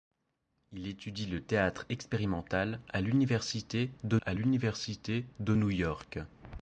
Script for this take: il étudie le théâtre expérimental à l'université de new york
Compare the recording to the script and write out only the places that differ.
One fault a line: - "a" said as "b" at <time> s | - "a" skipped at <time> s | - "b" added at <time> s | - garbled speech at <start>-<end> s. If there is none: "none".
- "à l'université de" added at 4.2 s